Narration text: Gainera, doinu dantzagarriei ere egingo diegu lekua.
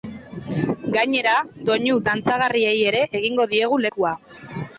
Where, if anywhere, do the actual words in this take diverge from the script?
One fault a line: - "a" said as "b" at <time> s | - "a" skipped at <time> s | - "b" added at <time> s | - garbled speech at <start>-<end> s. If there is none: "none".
none